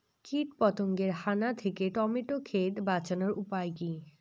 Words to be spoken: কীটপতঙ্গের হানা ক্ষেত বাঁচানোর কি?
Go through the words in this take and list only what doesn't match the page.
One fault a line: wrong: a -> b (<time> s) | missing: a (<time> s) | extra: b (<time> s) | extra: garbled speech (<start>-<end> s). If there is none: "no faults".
extra: থেকে টমেটো (1.5 s)
extra: উপায় (3.4 s)